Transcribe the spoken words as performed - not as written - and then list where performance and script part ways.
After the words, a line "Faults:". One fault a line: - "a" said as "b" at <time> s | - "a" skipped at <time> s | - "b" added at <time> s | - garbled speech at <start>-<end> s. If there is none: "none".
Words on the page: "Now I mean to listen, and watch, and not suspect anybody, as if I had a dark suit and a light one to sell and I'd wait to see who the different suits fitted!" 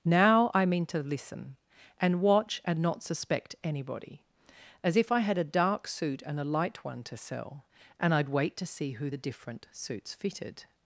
"Now I mean to listen, and watch, and not suspect anybody, as if I had a dark suit and a light one to sell and I'd wait to see who the different suits fitted!"
Faults:
none